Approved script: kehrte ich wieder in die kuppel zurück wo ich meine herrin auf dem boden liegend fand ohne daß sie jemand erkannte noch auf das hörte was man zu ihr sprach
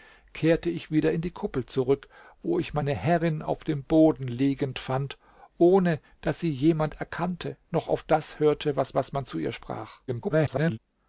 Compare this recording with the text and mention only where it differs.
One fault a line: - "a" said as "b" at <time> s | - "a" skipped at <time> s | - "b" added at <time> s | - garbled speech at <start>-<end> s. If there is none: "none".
- "was" added at 8.9 s
- garbled speech at 10.1-10.8 s